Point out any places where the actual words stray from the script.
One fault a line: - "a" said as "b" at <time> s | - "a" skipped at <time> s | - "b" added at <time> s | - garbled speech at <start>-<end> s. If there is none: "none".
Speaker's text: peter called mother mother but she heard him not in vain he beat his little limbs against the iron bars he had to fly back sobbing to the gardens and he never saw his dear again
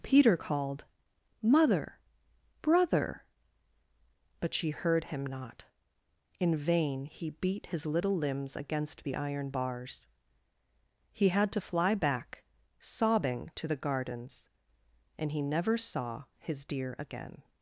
- "mother" said as "brother" at 2.6 s